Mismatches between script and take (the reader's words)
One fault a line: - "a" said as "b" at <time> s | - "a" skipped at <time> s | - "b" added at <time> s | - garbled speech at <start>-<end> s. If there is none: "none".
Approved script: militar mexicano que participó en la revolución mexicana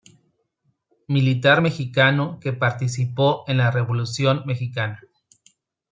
none